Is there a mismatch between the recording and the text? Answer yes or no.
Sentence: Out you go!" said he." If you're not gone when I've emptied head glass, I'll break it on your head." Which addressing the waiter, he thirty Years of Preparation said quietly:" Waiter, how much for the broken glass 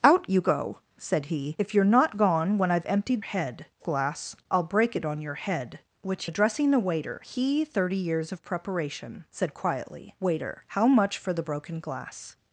no